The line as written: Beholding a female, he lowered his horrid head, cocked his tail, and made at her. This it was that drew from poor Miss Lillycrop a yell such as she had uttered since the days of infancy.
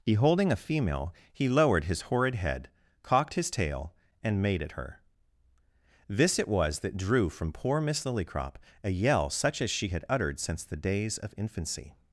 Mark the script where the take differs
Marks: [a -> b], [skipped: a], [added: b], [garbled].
Beholding a female, he lowered his horrid head, cocked his tail, and made at her. This it was that drew from poor Miss Lillycrop a yell such as she had uttered since the days of infancy.